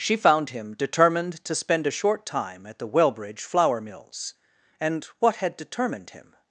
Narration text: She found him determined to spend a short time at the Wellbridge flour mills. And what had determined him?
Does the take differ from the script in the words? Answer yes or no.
no